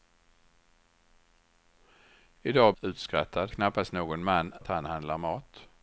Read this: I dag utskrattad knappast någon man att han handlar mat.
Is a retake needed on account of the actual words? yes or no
no